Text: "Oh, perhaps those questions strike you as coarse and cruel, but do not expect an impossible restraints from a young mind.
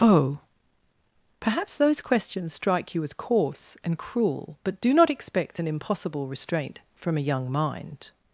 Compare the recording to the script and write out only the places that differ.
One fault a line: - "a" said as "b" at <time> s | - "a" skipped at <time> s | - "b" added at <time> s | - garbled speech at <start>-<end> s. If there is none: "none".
- "restraints" said as "restraint" at 6.3 s